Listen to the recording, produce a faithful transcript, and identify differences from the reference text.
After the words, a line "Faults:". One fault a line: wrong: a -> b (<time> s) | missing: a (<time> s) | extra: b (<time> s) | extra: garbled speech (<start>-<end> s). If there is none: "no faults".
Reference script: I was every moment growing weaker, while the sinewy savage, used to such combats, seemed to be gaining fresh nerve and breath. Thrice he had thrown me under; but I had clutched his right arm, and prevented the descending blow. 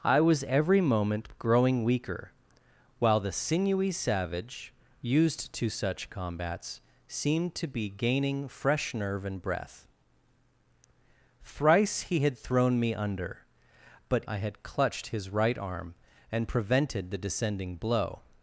I was every moment growing weaker, while the sinewy savage, used to such combats, seemed to be gaining fresh nerve and breath. Thrice he had thrown me under; but I had clutched his right arm, and prevented the descending blow.
Faults:
no faults